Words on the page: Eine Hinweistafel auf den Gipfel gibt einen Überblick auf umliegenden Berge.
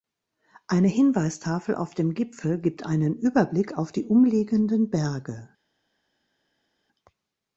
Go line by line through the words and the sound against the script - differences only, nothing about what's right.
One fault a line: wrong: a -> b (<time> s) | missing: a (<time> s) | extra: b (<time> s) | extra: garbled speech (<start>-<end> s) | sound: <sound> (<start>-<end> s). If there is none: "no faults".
wrong: den -> dem (1.9 s)
extra: die (3.9 s)